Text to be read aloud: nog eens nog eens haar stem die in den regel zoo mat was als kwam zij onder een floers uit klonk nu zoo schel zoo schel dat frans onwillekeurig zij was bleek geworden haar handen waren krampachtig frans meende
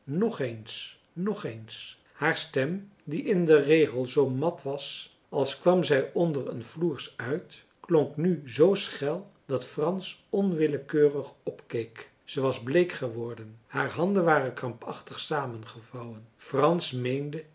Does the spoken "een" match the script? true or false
true